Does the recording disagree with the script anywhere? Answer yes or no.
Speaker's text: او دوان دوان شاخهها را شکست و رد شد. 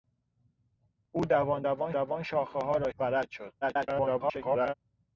yes